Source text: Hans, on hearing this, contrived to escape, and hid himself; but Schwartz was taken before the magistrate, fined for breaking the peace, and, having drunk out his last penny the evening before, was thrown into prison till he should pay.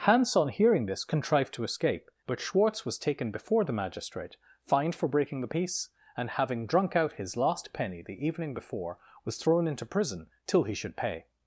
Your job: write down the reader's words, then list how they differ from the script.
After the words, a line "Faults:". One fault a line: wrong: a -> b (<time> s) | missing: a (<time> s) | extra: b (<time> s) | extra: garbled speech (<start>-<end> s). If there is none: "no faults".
Hans, on hearing this, contrived to escape; but Schwartz was taken before the magistrate, fined for breaking the peace, and, having drunk out his last penny the evening before, was thrown into prison till he should pay.
Faults:
missing: and hid himself (2.1 s)